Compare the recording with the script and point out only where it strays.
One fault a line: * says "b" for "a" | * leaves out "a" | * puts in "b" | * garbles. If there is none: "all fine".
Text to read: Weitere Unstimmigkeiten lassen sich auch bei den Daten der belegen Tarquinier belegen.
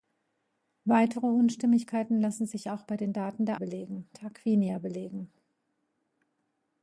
all fine